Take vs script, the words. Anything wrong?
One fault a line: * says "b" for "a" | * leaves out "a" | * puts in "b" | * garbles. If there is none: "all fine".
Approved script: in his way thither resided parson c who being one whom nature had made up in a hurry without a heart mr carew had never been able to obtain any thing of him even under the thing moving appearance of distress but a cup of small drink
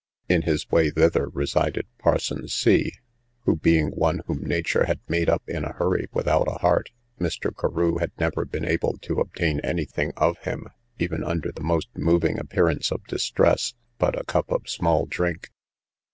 * says "most" for "thing"